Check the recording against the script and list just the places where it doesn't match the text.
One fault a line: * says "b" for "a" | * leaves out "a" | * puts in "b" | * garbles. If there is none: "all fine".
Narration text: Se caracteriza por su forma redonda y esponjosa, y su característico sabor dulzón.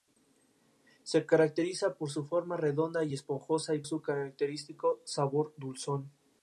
all fine